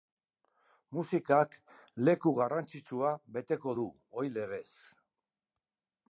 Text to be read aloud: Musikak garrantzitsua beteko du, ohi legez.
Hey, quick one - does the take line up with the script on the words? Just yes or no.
no